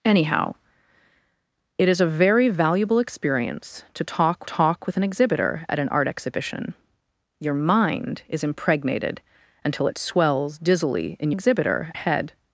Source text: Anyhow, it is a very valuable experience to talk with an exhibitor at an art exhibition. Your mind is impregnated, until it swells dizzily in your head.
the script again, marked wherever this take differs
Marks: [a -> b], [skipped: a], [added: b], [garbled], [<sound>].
Anyhow, it is a very valuable experience to talk [added: talk] with an exhibitor at an art exhibition. Your mind is impregnated, until it swells dizzily in [your -> exhibitor] head.